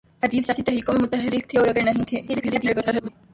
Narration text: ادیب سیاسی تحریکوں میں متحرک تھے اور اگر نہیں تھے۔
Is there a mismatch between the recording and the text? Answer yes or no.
yes